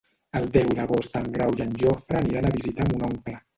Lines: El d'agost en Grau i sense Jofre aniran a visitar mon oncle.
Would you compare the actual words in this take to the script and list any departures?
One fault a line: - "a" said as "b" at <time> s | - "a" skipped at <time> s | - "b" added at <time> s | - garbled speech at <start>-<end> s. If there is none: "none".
- "deu" added at 0.6 s
- "sense" said as "en" at 1.7 s